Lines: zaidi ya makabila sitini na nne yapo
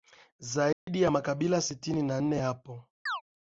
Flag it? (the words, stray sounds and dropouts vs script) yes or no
yes